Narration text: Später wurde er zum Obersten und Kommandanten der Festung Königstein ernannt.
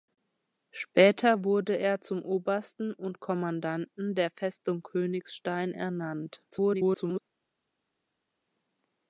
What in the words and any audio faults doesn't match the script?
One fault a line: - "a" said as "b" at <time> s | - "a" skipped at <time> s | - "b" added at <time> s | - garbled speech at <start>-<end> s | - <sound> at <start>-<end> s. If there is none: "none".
- garbled speech at 6.5-7.2 s